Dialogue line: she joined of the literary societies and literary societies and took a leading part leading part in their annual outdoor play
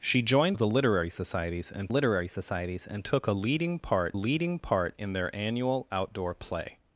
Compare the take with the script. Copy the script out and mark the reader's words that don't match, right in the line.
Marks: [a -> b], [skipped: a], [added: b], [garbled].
she joined of the literary societies and literary societies and took a leading part leading part in their annual outdoor play